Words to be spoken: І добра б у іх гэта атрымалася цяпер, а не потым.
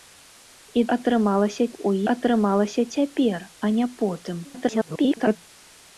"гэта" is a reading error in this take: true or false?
true